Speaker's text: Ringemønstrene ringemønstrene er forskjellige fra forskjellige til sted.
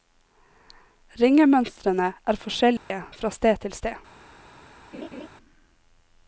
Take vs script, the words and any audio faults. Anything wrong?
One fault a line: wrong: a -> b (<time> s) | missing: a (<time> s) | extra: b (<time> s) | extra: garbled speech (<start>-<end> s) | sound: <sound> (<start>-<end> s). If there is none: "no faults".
missing: ringemønstrene (2.1 s)
sound: dropout (2.8-2.9 s)
wrong: forskjellige -> sted (3.4 s)
sound: laugh (4.9-5.3 s)